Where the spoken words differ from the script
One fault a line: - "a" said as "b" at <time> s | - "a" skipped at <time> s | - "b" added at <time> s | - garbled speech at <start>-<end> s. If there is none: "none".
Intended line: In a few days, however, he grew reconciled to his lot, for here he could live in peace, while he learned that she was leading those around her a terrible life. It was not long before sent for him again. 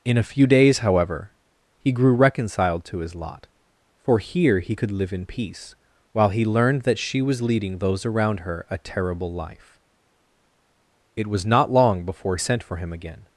none